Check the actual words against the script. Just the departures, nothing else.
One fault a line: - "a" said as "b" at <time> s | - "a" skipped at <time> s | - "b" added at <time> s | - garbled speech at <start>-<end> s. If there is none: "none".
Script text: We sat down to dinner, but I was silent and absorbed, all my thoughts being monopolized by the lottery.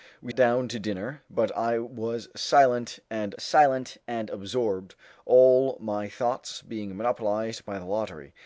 - "sat" skipped at 0.3 s
- "silent and" added at 3.4 s